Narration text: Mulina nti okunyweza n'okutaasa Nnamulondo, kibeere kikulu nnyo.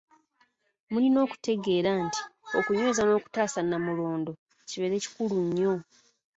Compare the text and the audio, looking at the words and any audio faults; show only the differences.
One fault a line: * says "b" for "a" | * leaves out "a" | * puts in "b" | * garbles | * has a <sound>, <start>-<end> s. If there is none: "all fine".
* puts in "okutegeera"